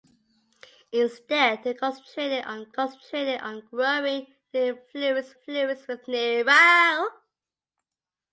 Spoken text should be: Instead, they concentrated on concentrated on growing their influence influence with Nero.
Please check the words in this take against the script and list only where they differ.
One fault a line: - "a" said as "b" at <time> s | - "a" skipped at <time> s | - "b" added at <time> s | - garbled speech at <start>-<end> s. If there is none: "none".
none